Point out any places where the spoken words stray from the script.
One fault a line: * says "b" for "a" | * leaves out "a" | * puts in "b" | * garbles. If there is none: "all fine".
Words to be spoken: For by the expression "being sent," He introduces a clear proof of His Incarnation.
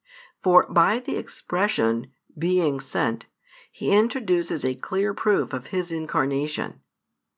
all fine